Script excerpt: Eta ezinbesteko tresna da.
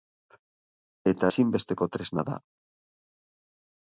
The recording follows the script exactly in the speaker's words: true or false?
true